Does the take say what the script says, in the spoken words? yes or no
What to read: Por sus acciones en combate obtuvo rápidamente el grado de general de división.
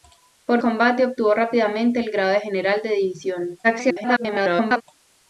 no